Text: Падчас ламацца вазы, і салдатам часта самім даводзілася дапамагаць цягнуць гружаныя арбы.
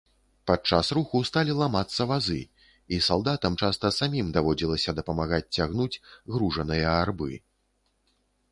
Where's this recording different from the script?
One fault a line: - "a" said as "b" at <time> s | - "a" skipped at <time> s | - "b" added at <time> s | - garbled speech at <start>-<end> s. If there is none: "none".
- "руху сталі" added at 1.0 s